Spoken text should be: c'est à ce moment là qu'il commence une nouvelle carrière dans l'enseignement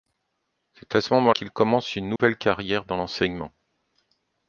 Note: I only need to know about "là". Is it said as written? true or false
false